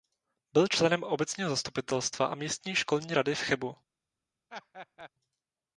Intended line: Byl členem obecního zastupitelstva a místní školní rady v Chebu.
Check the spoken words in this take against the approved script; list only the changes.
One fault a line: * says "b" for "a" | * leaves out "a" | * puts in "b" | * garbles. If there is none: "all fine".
all fine